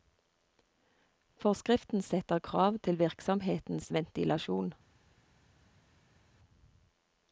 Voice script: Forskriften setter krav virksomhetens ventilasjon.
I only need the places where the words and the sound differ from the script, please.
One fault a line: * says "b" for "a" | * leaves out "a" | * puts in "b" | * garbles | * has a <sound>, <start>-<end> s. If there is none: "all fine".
* puts in "til"